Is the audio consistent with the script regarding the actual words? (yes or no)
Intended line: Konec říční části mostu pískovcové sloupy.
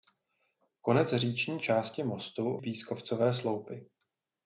yes